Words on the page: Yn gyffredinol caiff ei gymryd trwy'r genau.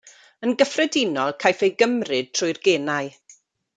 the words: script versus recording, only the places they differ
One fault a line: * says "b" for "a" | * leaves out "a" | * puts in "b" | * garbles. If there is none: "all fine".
all fine